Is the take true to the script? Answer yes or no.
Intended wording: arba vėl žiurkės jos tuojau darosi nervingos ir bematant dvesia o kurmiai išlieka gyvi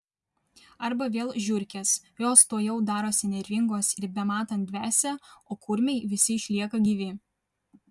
no